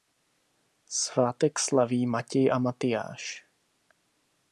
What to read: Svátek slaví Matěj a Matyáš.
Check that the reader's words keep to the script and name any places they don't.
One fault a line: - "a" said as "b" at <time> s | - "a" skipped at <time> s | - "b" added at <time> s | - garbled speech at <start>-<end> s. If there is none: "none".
none